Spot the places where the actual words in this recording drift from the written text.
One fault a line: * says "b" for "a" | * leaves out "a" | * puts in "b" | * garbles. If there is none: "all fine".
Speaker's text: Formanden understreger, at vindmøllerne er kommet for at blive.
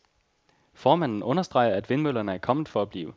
all fine